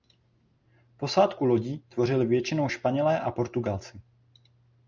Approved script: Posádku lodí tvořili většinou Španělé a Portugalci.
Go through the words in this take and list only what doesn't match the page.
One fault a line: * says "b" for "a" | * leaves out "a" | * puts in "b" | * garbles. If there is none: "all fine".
all fine